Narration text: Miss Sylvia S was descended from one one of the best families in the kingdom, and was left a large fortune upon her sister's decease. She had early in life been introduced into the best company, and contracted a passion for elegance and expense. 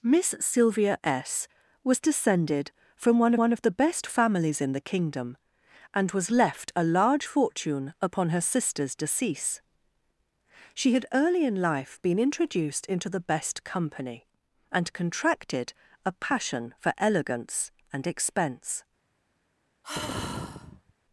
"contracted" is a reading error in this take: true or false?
false